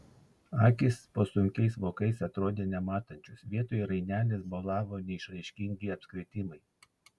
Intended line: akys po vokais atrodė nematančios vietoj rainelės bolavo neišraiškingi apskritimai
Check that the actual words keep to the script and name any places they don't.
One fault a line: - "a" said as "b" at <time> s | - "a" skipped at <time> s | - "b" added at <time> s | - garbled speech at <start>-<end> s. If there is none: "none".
- "sunkiais" added at 1.3 s